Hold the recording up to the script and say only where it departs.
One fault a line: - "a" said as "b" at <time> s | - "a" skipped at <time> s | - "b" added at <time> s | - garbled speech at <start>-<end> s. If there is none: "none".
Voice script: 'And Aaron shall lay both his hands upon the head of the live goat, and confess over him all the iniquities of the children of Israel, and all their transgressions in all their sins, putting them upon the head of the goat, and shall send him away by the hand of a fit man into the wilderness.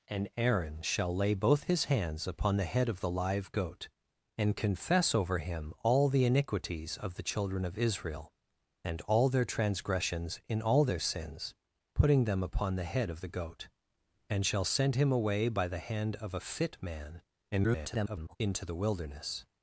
- garbled speech at 17.5-18.4 s